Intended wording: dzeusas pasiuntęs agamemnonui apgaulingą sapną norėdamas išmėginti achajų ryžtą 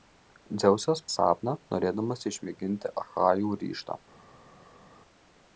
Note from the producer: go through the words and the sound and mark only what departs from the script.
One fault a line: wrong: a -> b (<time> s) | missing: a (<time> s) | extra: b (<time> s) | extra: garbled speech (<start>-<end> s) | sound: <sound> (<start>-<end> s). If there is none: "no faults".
missing: pasiuntęs agamemnonui apgaulingą (1.0 s)